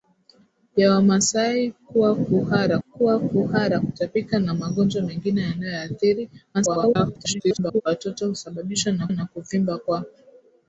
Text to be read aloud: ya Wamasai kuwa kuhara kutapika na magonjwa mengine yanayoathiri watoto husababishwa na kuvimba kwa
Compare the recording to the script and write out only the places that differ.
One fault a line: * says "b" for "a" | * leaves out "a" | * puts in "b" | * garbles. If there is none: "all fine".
* puts in "kuwa kuhara"
* garbles
* puts in "na"